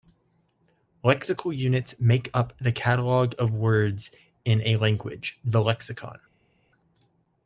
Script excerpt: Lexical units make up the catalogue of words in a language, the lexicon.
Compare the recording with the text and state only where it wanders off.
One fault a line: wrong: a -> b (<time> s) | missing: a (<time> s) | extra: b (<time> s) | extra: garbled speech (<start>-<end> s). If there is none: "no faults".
no faults